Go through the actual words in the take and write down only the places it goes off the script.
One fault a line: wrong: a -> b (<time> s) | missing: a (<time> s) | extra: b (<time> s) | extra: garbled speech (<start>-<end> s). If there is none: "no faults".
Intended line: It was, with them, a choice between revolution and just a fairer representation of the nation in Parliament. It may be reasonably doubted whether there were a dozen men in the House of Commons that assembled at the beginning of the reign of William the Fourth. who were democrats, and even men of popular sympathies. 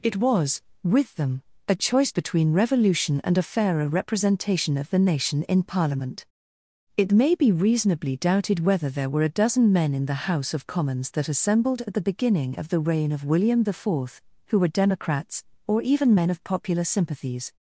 missing: just (3.4 s)
wrong: and -> or (15.7 s)